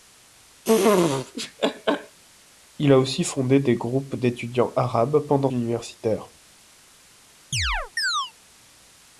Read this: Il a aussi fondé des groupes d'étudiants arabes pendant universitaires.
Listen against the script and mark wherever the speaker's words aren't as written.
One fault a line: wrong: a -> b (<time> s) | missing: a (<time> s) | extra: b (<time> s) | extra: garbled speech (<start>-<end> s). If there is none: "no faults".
no faults